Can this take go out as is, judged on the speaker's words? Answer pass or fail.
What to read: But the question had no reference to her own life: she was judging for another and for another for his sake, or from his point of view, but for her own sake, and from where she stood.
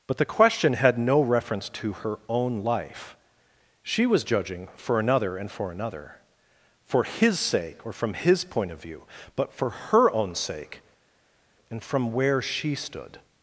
pass